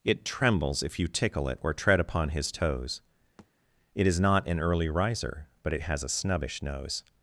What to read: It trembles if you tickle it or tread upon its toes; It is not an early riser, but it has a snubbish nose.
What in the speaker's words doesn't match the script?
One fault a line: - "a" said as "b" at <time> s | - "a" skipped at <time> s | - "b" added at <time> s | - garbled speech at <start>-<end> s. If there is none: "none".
- "its" said as "his" at 2.3 s